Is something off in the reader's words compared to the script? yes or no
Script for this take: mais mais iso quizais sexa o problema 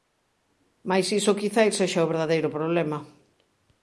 yes